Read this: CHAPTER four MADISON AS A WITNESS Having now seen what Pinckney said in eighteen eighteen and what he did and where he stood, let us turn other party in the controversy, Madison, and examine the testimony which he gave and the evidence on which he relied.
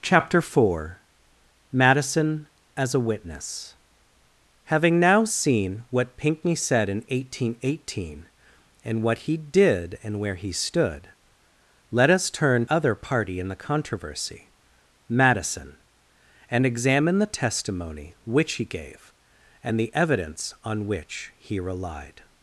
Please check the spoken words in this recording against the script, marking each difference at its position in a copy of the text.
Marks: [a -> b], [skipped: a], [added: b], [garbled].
CHAPTER four MADISON AS A WITNESS Having now seen what Pinckney said in eighteen eighteen and what he did and where he stood, let us turn other party in the controversy, Madison, and examine the testimony which he gave and the evidence on which he relied.